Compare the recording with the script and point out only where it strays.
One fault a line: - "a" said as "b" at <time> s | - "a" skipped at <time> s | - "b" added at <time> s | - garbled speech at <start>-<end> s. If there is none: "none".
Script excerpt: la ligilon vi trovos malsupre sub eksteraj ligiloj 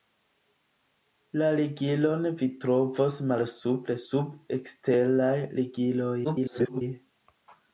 - garbled speech at 6.2-6.8 s